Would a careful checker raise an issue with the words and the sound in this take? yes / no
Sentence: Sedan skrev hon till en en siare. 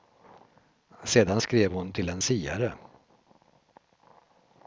yes